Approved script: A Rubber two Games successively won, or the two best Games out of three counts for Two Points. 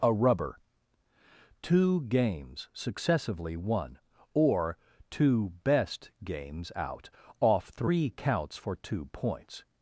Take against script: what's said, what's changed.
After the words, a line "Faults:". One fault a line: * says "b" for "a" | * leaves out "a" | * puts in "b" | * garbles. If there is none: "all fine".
A Rubber two Games successively won, or two best Games out off three counts for Two Points.
Faults:
* leaves out "the"
* says "off" for "of"